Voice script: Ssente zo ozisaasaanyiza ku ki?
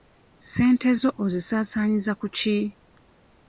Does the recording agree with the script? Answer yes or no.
yes